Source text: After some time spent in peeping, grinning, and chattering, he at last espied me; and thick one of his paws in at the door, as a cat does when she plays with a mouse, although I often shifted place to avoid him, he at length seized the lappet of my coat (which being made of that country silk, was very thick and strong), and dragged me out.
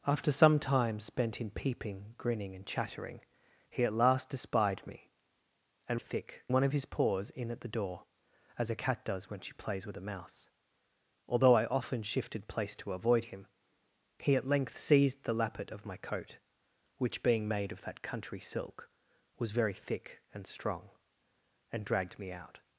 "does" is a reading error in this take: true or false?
false